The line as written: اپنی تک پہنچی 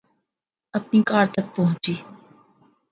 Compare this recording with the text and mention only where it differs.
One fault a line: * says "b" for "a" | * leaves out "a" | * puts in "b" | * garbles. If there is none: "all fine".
* puts in "کار"